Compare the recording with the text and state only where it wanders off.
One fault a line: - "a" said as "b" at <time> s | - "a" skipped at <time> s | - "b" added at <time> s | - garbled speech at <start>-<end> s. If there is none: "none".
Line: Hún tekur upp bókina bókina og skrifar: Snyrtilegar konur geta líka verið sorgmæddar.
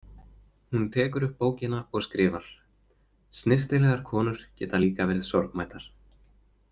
- "bókina" skipped at 1.8 s